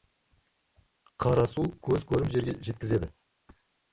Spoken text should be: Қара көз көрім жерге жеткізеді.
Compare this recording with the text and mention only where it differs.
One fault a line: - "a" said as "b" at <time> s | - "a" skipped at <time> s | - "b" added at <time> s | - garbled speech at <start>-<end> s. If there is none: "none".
- "су" added at 1.5 s